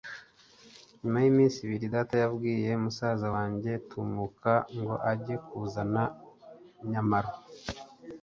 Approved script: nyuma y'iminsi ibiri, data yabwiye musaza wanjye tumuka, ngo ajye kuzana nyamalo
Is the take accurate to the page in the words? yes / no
yes